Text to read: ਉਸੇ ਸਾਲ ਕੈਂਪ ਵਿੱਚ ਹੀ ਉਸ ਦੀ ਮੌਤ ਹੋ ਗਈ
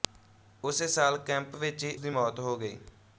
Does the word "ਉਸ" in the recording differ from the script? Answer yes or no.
yes